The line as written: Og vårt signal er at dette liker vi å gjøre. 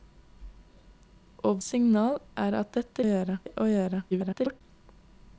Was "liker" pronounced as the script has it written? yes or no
no